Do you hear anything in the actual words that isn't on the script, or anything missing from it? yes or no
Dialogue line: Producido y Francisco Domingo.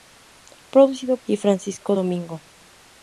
no